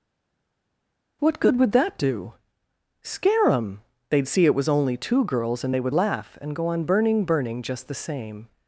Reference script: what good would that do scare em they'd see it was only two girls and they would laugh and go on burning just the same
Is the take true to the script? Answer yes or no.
no